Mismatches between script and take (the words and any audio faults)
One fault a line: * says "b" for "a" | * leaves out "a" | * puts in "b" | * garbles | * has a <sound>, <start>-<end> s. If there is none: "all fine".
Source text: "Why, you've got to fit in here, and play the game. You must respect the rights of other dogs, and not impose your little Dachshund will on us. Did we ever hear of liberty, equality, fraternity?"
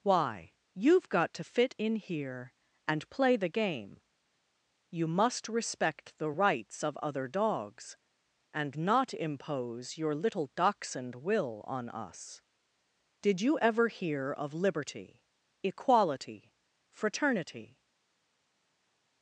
* says "you" for "we"